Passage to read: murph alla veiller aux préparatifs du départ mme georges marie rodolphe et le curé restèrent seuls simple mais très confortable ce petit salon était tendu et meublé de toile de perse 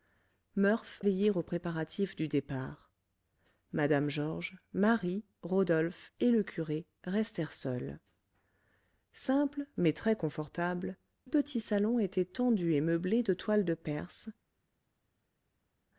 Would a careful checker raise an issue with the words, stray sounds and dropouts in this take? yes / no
yes